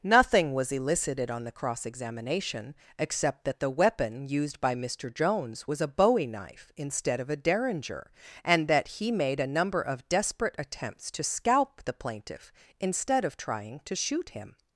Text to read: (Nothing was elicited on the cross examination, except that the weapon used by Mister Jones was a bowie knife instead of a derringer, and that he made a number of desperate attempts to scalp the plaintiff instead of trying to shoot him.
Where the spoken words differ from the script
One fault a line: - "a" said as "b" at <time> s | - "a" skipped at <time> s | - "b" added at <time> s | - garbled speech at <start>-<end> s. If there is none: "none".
none